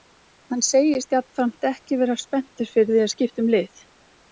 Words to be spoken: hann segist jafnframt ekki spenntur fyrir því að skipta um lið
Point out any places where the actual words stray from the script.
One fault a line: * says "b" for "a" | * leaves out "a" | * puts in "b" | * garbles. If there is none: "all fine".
* puts in "vera"